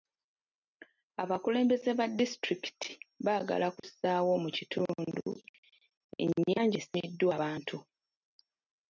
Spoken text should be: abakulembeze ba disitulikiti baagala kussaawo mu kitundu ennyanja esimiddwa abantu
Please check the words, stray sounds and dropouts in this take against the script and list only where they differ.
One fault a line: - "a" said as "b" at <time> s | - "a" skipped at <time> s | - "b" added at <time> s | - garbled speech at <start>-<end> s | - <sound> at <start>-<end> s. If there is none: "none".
- dropout at 3.8-3.8 s